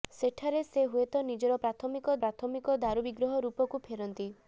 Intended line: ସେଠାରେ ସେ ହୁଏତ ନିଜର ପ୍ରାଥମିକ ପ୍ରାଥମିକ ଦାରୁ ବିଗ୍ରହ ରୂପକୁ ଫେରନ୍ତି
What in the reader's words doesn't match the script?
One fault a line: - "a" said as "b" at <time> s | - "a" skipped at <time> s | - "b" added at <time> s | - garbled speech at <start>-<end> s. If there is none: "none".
none